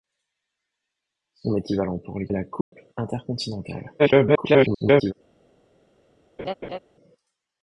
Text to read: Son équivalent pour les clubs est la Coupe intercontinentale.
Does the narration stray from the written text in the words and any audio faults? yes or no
yes